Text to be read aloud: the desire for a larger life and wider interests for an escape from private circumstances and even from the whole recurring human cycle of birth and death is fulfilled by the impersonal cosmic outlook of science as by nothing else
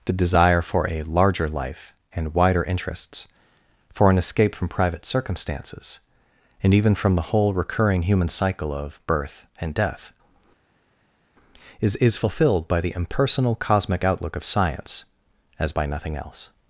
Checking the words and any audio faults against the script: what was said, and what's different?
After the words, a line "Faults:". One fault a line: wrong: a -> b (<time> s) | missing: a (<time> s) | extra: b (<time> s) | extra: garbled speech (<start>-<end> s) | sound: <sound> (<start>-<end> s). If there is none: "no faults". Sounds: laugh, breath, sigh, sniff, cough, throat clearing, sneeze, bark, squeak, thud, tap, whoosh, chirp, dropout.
the desire for a larger life and wider interests for an escape from private circumstances and even from the whole recurring human cycle of birth and death is is fulfilled by the impersonal cosmic outlook of science as by nothing else
Faults:
extra: is (12.0 s)